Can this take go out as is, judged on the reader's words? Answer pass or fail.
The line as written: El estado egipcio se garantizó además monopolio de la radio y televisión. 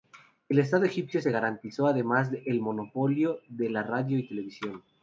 fail